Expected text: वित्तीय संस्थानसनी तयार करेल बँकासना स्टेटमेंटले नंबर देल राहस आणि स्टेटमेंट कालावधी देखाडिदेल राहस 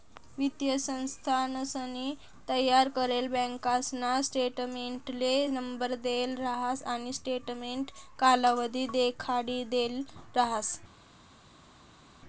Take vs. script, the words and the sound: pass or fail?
pass